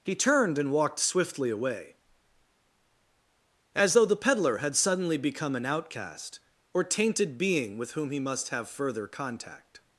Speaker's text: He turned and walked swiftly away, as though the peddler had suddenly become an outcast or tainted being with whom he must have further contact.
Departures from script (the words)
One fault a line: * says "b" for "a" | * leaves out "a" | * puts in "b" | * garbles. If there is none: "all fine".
all fine